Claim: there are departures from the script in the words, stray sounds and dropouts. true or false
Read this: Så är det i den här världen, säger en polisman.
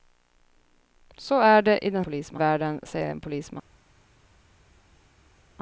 true